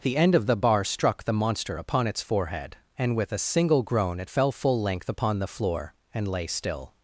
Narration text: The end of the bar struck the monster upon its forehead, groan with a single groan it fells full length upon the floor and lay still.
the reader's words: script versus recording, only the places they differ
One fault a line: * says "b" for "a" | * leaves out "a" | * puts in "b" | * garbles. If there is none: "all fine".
* says "and" for "groan"
* says "fell" for "fells"